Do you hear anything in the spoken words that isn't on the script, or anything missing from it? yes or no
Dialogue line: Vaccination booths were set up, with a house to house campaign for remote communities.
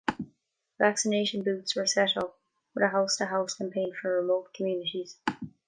no